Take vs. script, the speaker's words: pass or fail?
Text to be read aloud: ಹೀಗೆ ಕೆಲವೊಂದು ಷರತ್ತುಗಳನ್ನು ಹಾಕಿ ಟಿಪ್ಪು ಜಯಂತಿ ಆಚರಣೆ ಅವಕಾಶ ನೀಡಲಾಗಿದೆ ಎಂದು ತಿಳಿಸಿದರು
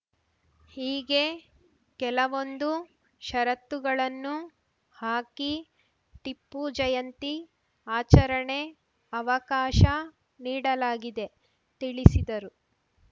fail